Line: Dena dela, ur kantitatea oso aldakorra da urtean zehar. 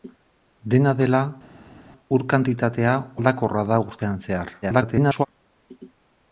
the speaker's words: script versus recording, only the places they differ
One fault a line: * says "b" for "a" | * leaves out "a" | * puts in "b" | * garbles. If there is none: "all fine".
* leaves out "oso"
* garbles